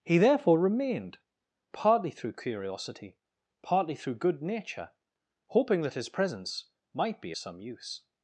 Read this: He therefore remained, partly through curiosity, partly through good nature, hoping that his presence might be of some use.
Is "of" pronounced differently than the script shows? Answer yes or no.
yes